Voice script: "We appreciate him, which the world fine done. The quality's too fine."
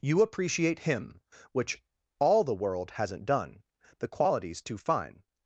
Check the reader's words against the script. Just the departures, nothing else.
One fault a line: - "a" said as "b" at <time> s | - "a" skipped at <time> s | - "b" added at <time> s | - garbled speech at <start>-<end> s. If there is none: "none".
- "We" said as "You" at 0.0 s
- "all" added at 2.2 s
- "fine" said as "hasn't" at 2.9 s